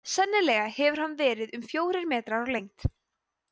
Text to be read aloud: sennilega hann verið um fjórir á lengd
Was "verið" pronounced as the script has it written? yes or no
yes